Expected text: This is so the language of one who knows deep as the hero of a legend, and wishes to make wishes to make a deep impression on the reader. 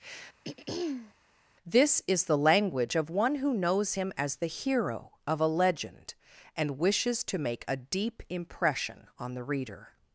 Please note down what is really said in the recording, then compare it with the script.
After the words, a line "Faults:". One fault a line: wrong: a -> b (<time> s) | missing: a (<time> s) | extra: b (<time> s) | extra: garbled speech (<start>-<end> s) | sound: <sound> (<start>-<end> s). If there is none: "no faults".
This is the language of one who knows him as the hero of a legend, and wishes to make a deep impression on the reader.
Faults:
sound: throat clearing (0.4-1.1 s)
missing: so (2.2 s)
wrong: deep -> him (3.9 s)
missing: wishes to make (7.6 s)